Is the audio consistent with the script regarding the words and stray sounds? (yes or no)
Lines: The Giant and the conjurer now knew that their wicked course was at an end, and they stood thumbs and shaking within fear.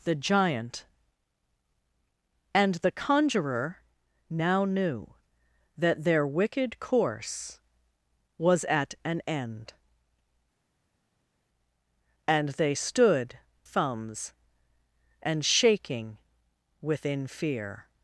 yes